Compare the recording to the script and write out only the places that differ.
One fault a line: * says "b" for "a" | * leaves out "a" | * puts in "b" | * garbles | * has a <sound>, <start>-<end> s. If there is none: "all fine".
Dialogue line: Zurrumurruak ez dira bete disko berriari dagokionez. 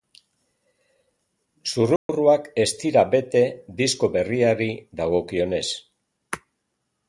* has a dropout, 2.0-2.1 s